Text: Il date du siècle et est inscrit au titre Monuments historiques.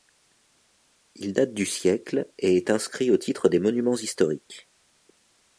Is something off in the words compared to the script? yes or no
yes